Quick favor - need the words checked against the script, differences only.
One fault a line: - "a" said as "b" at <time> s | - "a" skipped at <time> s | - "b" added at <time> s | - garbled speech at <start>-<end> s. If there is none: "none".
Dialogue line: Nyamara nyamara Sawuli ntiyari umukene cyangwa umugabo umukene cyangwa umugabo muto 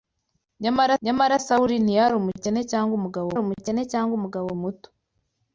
none